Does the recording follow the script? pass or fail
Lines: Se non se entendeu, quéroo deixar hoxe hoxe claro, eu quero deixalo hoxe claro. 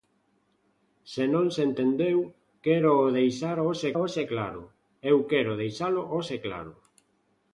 pass